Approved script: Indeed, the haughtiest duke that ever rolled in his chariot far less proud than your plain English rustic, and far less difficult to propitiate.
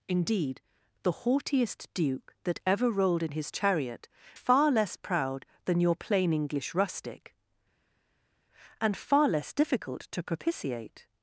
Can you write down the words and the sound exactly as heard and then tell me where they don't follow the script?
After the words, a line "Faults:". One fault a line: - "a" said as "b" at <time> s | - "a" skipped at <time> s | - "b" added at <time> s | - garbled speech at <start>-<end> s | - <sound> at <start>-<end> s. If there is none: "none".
Indeed, the haughtiest duke that ever rolled in his chariot far less proud than your plain English rustic, and far less difficult to propitiate.
Faults:
none